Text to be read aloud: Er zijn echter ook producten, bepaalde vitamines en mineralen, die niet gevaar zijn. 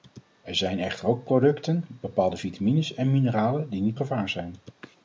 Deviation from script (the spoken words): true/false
false